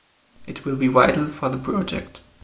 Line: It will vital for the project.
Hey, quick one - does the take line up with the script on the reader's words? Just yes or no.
no